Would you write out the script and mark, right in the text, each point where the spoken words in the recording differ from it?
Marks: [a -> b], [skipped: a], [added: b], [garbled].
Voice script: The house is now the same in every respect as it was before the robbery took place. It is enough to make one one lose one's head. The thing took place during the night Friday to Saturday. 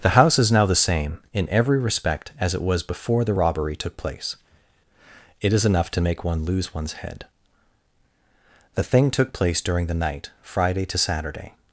The house is now the same in every respect as it was before the robbery took place. It is enough to make one [skipped: one] lose one's head. The thing took place during the night Friday to Saturday.